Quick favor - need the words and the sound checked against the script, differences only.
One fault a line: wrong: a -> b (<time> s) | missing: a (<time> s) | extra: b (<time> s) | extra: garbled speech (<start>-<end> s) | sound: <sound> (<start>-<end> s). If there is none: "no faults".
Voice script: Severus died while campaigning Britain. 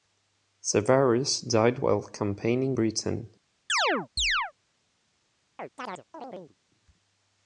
sound: chirp (3.7-4.5 s)
sound: chirp (5.6-6.6 s)